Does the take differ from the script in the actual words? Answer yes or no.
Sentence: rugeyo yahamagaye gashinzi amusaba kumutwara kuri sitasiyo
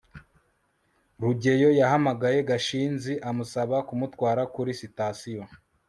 no